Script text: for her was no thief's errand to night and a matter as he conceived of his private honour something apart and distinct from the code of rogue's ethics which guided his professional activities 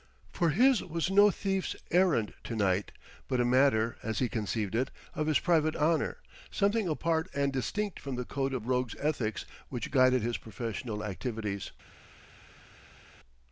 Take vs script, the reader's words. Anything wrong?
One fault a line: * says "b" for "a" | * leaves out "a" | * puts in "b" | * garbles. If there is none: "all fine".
* says "his" for "her"
* says "but" for "and"
* puts in "it"